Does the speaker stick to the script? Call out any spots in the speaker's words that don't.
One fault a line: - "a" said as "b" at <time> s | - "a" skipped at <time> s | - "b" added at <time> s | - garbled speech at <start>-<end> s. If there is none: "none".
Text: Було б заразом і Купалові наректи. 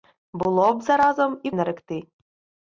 - "Купалові" skipped at 1.5 s